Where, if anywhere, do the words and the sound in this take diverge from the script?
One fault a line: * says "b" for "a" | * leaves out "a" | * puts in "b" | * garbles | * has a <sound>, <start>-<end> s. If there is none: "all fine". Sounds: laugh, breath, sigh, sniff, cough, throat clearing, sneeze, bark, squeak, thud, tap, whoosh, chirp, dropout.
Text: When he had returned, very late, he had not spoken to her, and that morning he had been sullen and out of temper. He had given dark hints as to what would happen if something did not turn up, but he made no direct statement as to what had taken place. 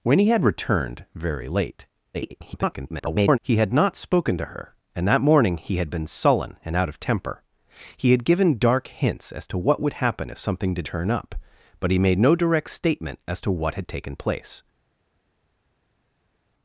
* garbles
* leaves out "not"